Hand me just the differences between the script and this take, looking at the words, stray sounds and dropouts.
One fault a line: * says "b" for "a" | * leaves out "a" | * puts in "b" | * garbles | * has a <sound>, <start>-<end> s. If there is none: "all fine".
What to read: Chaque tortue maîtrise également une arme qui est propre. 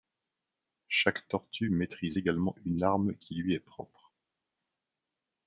* puts in "lui"